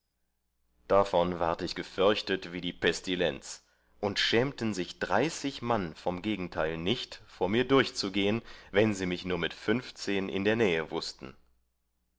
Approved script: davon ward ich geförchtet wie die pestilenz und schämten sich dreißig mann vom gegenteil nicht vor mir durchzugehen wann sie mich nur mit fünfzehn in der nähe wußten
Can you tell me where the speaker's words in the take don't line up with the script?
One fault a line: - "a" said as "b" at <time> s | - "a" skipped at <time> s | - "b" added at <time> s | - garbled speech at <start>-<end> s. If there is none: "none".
none